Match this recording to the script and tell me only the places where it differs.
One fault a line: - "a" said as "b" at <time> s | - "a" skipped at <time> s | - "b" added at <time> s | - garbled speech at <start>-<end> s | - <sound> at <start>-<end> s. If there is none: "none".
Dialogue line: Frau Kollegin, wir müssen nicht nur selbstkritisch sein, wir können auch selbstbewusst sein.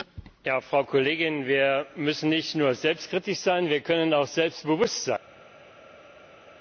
none